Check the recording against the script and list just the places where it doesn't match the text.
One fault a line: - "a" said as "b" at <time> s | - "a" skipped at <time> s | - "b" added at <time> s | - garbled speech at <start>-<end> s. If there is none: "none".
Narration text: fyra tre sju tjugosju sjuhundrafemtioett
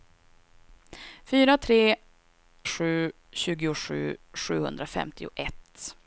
none